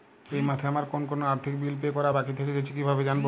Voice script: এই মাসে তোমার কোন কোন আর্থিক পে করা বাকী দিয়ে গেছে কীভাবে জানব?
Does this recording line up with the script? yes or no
no